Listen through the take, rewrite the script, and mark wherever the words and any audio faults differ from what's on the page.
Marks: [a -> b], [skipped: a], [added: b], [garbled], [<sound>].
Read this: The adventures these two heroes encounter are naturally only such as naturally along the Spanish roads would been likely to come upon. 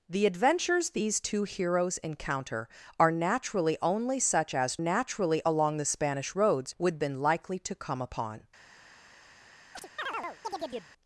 The adventures these two heroes encounter are naturally only such as naturally along the Spanish roads would been likely to come upon. [chirp]